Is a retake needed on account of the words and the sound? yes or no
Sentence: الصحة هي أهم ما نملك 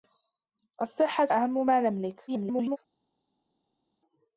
yes